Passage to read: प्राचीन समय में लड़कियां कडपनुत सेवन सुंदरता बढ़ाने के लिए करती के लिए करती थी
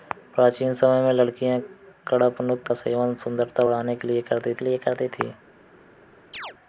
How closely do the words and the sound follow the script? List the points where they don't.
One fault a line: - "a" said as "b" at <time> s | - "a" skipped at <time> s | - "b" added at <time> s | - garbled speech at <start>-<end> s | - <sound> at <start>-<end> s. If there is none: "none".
- chirp at 6.3-6.6 s